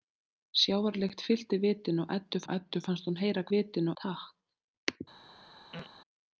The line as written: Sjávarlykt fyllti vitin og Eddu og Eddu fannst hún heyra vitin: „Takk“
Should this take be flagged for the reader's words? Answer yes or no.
no